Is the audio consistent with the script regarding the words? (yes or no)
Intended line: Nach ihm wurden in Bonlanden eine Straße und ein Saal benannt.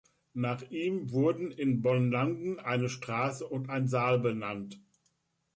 yes